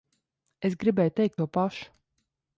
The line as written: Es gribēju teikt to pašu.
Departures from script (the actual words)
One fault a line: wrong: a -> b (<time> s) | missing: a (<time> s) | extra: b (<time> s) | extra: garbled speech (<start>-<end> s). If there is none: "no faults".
no faults